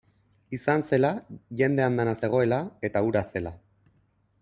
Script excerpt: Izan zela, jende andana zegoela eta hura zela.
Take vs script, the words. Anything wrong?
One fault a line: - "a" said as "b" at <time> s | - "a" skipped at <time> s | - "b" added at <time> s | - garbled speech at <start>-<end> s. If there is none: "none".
none